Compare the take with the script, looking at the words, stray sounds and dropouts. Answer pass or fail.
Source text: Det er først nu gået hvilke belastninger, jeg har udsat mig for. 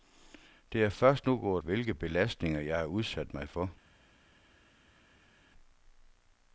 pass